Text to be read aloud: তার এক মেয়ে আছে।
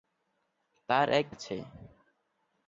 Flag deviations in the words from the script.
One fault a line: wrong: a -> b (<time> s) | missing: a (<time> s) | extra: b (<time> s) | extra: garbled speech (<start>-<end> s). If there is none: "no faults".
missing: মেয়ে (1.3 s)